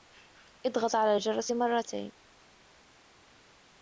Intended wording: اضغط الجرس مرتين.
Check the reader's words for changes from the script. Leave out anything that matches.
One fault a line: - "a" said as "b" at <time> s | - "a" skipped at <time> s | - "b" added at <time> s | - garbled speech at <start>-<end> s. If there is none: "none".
- "على" added at 0.9 s